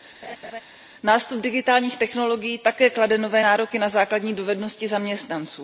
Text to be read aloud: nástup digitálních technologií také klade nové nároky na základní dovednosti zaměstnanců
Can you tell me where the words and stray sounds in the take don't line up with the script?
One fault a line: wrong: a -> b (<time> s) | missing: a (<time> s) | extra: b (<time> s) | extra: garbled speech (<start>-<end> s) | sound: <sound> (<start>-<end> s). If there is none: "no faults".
sound: laugh (0.2-0.6 s)